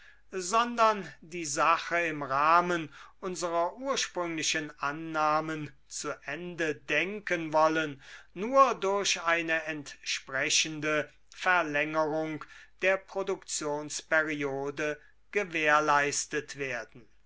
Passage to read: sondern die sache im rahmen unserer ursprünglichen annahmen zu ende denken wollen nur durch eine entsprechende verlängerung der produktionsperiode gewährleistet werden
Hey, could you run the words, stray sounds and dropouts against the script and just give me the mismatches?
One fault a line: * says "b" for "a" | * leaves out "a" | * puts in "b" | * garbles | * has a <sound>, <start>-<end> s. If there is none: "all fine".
all fine